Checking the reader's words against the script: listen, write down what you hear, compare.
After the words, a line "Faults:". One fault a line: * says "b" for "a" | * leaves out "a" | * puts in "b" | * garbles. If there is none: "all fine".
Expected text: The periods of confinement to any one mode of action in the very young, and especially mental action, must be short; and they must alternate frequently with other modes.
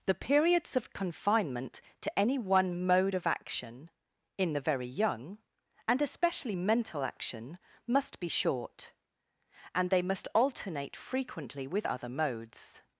The periods of confinement to any one mode of action in the very young, and especially mental action, must be short; and they must alternate frequently with other modes.
Faults:
all fine